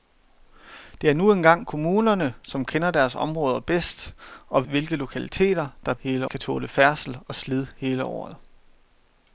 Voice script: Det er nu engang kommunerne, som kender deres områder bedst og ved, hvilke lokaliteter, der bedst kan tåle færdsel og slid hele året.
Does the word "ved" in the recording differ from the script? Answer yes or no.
yes